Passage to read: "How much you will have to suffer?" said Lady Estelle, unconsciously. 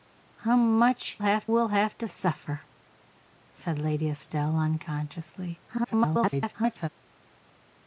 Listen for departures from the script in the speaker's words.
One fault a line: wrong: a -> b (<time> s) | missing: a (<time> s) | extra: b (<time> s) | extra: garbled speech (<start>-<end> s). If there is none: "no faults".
wrong: you -> have (1.2 s)
extra: garbled speech (5.7-6.9 s)